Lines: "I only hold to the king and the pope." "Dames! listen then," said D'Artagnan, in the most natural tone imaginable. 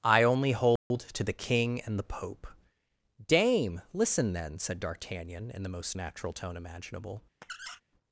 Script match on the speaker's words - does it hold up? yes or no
no